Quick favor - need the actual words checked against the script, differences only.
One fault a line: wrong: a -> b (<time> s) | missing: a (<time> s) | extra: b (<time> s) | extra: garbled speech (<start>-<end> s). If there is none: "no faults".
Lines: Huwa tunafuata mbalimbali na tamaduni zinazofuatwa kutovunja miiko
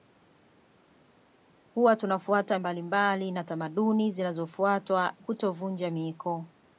no faults